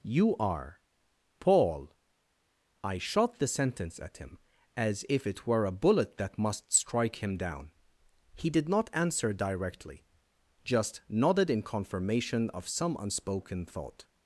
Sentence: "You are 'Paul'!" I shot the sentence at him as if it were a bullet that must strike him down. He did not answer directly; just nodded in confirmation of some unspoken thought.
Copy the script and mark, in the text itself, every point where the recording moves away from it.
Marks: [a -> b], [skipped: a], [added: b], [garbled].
"You are 'Paul'!" I shot the sentence at him as if it were a bullet that must strike him down. He did not answer directly; just nodded in confirmation of some unspoken thought.